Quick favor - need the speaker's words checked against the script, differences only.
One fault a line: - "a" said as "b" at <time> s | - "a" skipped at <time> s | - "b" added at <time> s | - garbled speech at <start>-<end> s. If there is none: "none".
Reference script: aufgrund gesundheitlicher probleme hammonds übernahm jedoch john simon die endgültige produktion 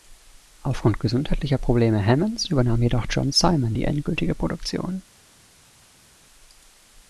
none